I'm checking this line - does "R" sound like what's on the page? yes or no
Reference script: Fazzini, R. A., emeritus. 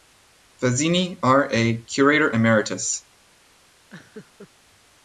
yes